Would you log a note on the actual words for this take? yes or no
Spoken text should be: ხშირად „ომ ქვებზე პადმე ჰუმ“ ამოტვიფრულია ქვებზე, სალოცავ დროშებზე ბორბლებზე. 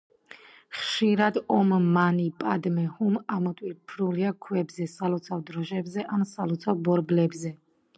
yes